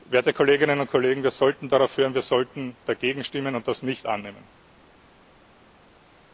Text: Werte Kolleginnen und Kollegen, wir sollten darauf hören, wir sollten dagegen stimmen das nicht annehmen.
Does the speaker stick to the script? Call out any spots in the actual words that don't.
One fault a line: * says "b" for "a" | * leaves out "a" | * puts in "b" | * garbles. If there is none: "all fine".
* puts in "und"